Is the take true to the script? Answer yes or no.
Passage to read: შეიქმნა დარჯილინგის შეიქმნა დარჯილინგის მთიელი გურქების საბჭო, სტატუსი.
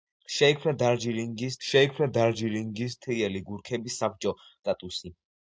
yes